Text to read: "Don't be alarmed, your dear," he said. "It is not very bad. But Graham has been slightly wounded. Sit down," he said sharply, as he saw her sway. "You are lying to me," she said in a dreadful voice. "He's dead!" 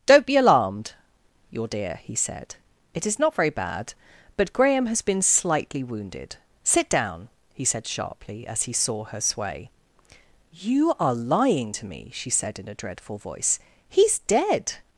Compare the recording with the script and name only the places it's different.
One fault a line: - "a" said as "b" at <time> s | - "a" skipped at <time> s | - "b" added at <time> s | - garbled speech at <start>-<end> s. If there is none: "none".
none